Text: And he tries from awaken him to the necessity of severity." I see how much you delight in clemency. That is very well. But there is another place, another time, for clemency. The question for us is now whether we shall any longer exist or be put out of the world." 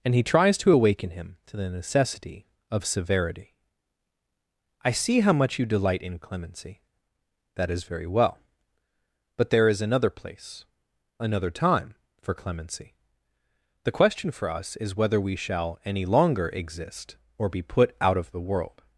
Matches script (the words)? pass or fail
fail